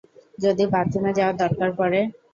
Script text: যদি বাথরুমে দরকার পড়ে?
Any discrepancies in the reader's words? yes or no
yes